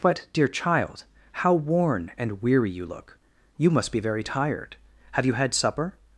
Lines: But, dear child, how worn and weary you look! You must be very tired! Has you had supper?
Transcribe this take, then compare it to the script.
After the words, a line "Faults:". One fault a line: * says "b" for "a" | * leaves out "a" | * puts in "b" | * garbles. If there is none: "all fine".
But, dear child, how worn and weary you look! You must be very tired! Have you had supper?
Faults:
* says "Have" for "Has"